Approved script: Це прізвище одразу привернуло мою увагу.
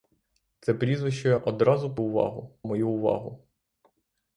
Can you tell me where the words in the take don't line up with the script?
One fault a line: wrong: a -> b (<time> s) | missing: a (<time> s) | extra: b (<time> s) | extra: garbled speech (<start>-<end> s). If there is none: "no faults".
wrong: привернуло -> увагу (2.0 s)